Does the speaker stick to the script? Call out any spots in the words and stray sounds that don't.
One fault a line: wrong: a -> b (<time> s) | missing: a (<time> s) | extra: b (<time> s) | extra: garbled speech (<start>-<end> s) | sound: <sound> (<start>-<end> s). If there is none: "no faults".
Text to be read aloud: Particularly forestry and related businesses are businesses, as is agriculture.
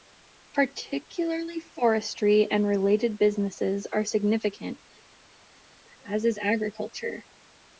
wrong: businesses -> significant (4.0 s)